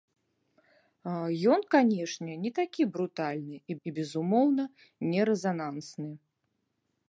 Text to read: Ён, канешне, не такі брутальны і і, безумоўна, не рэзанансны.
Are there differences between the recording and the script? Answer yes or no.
no